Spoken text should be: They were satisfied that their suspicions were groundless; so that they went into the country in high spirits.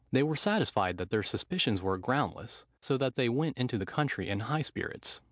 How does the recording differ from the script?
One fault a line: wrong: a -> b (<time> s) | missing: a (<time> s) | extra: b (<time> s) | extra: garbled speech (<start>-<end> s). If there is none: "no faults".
no faults